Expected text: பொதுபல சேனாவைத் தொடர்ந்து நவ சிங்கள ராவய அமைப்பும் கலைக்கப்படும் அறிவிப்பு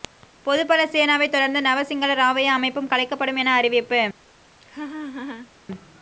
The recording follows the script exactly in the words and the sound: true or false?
false